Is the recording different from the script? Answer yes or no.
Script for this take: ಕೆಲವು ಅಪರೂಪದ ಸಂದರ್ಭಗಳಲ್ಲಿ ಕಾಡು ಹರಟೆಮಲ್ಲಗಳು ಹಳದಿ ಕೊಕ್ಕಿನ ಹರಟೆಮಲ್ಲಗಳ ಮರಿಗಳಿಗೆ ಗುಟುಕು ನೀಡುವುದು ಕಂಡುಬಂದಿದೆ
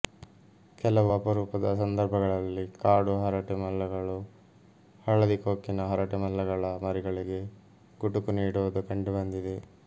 no